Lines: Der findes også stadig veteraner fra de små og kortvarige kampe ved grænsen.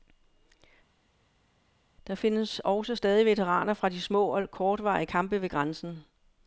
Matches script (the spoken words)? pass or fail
pass